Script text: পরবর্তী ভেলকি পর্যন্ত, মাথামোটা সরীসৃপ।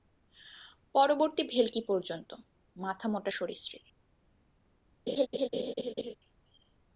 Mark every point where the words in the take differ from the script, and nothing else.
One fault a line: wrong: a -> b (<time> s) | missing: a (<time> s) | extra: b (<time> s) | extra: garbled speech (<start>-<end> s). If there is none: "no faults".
no faults